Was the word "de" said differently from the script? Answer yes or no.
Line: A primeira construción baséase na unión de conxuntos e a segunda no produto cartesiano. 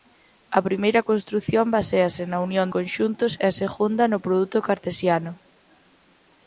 yes